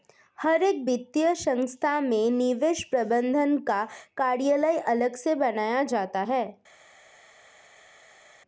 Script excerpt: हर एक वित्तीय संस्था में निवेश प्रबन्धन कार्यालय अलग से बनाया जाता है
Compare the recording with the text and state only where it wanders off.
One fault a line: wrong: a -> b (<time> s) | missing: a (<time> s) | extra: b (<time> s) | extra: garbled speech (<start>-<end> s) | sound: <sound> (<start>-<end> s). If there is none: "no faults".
extra: का (3.6 s)